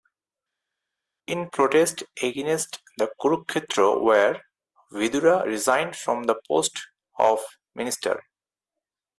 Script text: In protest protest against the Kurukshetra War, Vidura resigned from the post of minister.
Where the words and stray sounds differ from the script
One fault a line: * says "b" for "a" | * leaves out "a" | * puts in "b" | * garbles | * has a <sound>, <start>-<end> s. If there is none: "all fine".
* leaves out "protest"